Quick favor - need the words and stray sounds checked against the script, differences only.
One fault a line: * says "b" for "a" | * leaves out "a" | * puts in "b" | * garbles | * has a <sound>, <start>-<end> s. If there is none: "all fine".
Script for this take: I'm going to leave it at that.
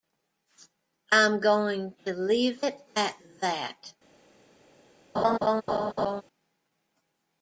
* has a laugh, 5.1-6.2 s